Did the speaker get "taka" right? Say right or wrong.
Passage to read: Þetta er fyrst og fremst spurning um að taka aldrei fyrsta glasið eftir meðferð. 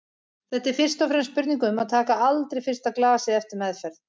right